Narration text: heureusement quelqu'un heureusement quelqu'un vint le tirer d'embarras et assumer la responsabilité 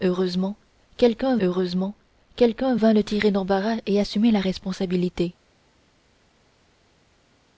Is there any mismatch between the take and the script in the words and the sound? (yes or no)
no